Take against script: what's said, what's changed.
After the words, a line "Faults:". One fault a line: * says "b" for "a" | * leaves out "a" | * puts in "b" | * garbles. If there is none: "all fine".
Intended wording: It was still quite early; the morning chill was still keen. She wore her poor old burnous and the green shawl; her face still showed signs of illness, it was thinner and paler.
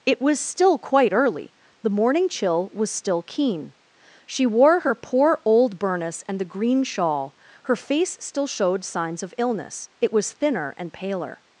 It was still quite early; the morning chill was still keen. She wore her poor old burnous and the green shawl; her face still showed signs of illness, it was thinner and paler.
Faults:
all fine